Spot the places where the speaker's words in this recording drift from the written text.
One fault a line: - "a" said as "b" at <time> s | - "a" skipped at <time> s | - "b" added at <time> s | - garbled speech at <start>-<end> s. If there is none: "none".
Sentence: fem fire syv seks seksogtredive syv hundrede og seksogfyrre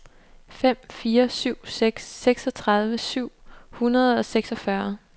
none